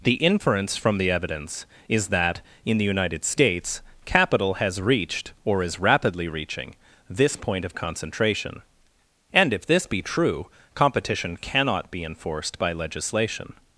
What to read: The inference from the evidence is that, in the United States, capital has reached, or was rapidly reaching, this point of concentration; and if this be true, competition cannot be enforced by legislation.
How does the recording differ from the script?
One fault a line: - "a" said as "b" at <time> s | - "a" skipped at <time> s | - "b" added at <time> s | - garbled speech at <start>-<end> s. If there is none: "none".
- "was" said as "is" at 5.6 s